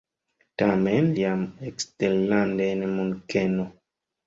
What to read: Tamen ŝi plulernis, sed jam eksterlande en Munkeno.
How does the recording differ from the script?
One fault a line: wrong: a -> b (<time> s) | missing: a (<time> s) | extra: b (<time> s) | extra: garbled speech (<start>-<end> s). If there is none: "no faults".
missing: ŝi plulernis sed (1.1 s)